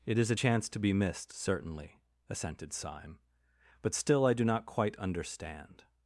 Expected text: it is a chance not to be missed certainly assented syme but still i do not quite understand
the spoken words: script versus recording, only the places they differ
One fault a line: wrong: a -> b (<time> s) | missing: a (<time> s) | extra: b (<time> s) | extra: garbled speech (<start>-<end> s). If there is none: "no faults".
missing: not (0.7 s)